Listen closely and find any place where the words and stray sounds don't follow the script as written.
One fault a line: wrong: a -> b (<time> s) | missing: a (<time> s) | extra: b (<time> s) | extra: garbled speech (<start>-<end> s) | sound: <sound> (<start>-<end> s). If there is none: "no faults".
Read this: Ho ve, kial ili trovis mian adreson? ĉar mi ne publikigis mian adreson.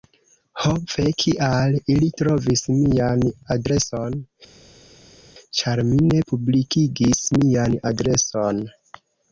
no faults